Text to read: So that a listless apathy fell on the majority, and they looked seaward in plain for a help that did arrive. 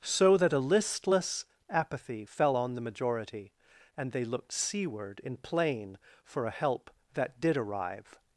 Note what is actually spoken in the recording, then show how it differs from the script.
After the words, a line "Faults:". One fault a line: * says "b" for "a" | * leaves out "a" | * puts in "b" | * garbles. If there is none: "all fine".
So that a listless apathy fell on the majority, and they looked seaward in plain for a help that did arrive.
Faults:
all fine